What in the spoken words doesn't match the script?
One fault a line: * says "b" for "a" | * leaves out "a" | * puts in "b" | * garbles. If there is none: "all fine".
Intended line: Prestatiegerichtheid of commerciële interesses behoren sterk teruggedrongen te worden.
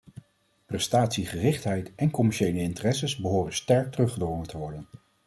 * says "en" for "of"